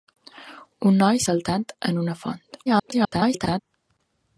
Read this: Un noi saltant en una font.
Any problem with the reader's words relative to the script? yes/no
yes